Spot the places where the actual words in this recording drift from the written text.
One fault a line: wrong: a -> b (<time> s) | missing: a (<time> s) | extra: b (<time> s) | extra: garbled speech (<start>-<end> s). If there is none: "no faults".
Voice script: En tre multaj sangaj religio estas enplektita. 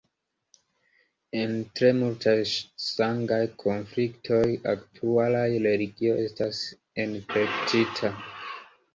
extra: konfliktoj aktualaj (3.6 s)